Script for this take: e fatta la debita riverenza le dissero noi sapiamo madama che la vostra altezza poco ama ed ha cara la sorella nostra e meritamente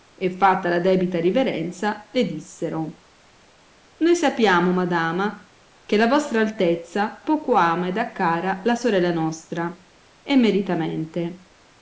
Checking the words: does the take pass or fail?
pass